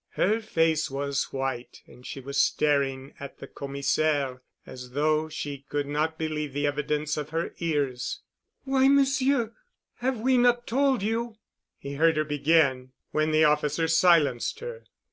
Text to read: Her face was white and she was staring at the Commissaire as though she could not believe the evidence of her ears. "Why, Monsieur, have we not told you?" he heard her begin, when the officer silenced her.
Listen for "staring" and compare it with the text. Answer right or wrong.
right